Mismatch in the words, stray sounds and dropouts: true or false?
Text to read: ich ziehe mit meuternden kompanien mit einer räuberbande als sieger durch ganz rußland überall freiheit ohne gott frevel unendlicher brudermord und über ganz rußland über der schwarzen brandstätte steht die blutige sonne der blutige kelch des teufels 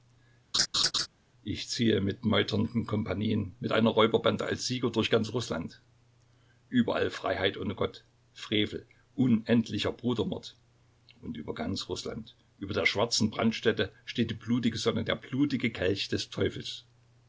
true